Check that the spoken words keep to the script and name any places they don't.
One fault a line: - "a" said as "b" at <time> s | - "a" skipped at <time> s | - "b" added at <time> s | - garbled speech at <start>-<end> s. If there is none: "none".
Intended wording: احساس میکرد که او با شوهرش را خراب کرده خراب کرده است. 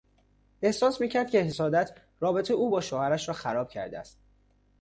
- "حسادت رابطهی" added at 1.4 s
- "خراب کرده" skipped at 4.0 s